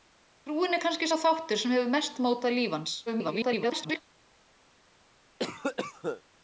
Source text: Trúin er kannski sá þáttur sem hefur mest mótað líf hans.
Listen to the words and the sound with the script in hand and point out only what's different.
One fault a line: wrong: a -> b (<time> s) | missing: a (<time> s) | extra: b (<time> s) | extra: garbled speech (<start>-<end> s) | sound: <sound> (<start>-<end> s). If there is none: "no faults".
extra: garbled speech (3.1-4.0 s)
sound: cough (5.4-6.2 s)